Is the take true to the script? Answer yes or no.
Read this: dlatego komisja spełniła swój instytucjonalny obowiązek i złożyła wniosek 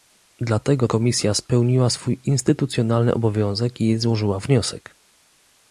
yes